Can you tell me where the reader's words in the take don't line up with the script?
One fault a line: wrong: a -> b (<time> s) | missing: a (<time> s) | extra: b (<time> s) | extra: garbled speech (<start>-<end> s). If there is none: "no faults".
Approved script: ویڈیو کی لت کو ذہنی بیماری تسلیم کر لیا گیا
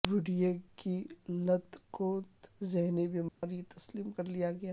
no faults